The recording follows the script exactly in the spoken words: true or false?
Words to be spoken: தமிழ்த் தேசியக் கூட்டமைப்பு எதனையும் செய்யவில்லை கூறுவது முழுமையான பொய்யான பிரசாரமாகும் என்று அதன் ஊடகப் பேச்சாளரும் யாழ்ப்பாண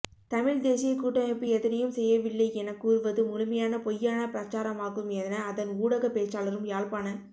false